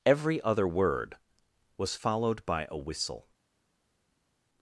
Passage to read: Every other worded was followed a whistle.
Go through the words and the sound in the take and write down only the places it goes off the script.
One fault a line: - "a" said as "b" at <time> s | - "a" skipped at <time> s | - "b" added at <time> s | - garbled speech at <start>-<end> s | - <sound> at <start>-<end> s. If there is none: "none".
- "worded" said as "word" at 0.7 s
- "by" added at 2.5 s